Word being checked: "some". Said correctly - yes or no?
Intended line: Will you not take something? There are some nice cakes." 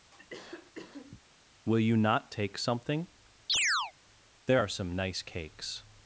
yes